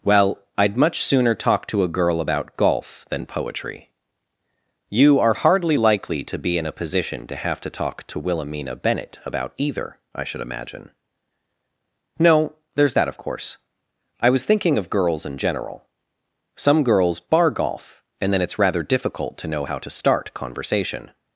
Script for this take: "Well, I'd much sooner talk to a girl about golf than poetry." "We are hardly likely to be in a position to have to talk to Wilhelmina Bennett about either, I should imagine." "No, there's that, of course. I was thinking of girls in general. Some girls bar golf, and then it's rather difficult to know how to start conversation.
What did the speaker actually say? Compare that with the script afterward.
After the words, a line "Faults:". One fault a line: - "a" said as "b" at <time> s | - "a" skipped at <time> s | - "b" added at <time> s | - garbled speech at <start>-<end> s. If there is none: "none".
"Well, I'd much sooner talk to a girl about golf than poetry." "You are hardly likely to be in a position to have to talk to Wilhelmina Bennett about either, I should imagine." "No, there's that, of course. I was thinking of girls in general. Some girls bar golf, and then it's rather difficult to know how to start conversation.
Faults:
- "We" said as "You" at 4.9 s